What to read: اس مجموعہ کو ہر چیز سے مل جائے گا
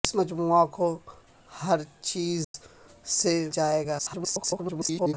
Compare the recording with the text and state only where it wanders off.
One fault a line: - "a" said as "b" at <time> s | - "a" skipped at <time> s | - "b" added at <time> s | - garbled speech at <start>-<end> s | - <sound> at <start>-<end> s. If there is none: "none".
- dropout at 2.4-2.5 s
- "مل" skipped at 3.3 s
- garbled speech at 4.0-5.1 s